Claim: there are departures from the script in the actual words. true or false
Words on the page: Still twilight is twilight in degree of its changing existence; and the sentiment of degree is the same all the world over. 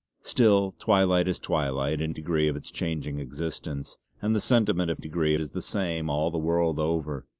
false